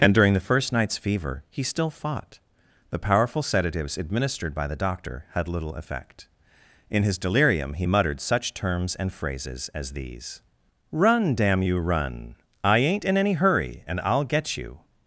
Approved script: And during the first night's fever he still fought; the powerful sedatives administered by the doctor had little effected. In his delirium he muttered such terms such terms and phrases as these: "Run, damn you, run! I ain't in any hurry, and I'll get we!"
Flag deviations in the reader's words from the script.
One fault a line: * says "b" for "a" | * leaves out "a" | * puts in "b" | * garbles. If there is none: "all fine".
* says "effect" for "effected"
* leaves out "such terms"
* says "you" for "we"